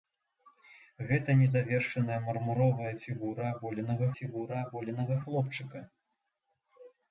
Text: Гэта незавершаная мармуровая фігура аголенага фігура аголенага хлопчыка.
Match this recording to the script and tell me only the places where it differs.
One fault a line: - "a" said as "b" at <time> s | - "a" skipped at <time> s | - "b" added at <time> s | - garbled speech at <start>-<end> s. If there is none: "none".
none